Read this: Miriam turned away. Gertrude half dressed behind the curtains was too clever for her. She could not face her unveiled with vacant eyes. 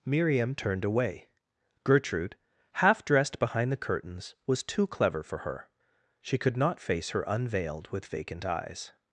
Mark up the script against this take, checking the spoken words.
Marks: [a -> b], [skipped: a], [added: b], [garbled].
Miriam turned away. Gertrude half dressed behind the curtains was too clever for her. She could not face her unveiled with vacant eyes.